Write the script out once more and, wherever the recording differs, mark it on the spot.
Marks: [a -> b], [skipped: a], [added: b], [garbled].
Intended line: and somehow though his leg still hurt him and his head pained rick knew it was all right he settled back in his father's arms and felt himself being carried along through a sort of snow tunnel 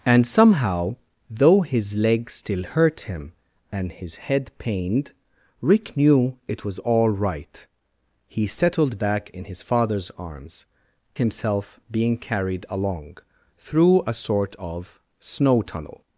and somehow though his leg still hurt him and his head pained rick knew it was all right he settled back in his father's arms [skipped: and felt] himself being carried along through a sort of snow tunnel